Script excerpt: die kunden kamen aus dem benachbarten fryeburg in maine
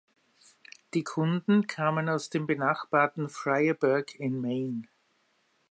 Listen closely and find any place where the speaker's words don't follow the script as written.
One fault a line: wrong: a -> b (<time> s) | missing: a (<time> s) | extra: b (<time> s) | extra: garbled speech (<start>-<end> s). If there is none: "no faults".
no faults